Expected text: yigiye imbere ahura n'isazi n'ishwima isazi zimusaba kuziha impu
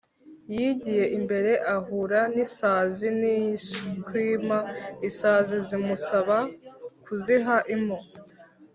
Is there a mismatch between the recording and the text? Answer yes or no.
no